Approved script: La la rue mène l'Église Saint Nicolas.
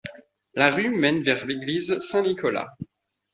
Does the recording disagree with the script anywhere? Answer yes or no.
yes